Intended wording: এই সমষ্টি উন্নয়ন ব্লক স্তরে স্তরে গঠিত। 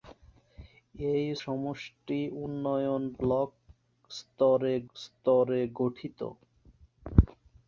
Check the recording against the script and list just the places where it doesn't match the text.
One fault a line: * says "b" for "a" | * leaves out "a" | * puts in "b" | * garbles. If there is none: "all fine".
all fine